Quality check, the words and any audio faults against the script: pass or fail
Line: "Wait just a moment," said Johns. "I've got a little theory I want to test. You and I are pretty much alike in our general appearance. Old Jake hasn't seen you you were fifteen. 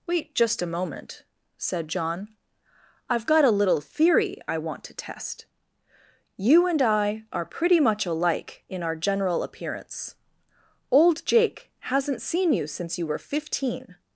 fail